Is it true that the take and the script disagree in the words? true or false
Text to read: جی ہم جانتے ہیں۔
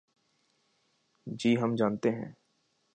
false